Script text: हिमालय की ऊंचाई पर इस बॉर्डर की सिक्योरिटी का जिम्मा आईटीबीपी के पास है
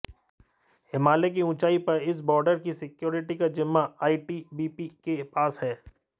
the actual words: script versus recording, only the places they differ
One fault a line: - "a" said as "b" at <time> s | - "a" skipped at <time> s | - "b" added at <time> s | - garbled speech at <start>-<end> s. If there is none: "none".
none